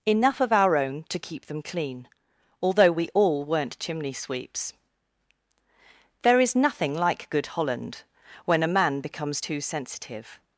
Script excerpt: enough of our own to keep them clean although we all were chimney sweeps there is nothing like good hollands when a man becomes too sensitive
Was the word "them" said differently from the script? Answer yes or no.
no